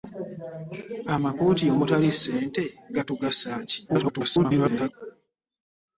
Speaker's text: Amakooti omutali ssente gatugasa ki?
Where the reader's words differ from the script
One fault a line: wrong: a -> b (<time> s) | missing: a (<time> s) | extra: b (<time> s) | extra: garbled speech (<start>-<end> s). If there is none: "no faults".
extra: garbled speech (3.9-4.9 s)